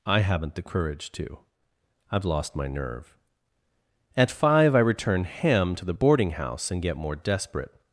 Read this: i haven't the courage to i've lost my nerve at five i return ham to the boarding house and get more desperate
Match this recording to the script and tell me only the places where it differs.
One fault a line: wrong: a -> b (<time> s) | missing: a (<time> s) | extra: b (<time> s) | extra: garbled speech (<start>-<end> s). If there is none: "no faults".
no faults